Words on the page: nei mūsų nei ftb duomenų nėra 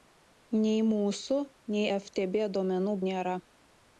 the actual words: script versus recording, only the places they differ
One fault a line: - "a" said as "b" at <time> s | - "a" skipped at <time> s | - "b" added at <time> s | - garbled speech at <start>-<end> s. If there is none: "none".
none